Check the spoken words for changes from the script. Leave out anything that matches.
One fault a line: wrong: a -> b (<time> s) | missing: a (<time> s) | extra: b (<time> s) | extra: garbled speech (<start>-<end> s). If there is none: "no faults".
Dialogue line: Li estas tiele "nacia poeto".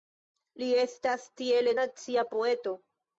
no faults